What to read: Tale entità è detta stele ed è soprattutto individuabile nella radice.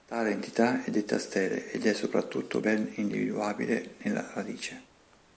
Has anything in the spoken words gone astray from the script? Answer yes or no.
yes